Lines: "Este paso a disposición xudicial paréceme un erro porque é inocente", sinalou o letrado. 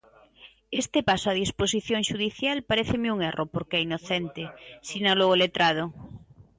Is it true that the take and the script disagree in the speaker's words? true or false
false